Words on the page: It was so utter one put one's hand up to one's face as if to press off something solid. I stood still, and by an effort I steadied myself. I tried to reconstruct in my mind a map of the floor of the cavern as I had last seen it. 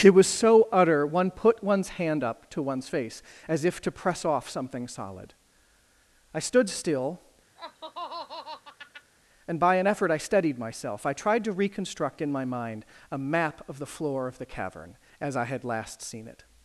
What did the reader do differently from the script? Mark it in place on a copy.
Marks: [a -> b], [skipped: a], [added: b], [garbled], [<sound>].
It was so utter one put one's hand up to one's face as if to press off something solid. I stood still, [laugh] and by an effort I steadied myself. I tried to reconstruct in my mind a map of the floor of the cavern as I had last seen it.